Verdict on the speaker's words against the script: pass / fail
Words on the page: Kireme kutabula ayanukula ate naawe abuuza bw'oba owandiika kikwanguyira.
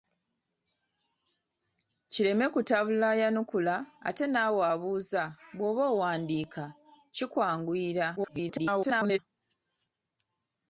fail